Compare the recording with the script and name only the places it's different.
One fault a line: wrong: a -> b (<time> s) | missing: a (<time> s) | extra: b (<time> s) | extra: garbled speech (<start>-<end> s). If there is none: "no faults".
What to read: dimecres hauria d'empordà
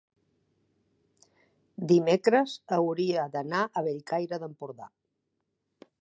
extra: d'anar a bellcaire (3.4 s)